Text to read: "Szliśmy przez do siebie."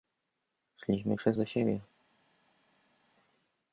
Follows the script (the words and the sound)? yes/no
yes